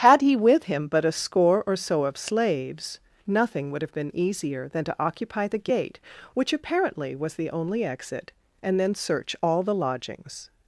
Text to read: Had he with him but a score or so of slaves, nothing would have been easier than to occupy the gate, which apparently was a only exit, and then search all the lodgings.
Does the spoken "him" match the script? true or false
true